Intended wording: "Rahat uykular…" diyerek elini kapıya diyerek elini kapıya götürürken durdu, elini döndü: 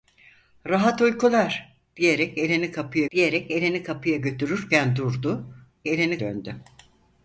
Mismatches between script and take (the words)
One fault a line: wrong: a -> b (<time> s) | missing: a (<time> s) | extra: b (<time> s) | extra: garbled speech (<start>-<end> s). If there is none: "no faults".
no faults